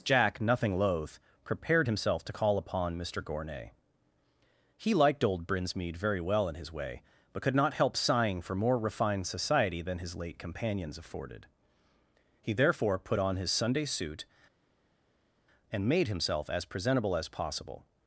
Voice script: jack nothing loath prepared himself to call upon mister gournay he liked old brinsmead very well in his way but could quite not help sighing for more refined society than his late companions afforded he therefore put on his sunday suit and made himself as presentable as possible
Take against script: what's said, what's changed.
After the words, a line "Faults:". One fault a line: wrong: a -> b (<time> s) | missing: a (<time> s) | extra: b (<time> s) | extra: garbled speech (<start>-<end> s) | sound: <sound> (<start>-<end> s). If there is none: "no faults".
jack nothing loath prepared himself to call upon mister gournay he liked old brinsmead very well in his way but could not help sighing for more refined society than his late companions afforded he therefore put on his sunday suit and made himself as presentable as possible
Faults:
missing: quite (7.6 s)